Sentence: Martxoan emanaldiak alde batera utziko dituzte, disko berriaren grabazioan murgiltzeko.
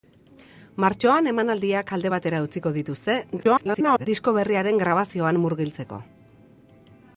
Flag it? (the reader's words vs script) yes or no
yes